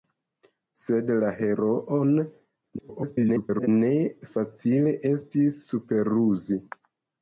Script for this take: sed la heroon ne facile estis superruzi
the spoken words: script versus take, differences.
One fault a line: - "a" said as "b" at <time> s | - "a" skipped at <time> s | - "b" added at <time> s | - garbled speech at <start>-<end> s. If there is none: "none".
- garbled speech at 2.8-3.7 s